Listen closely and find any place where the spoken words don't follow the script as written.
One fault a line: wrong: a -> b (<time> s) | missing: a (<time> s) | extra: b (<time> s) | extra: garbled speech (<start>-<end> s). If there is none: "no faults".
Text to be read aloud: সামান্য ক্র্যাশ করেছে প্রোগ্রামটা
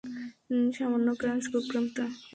missing: করেছে (1.4 s)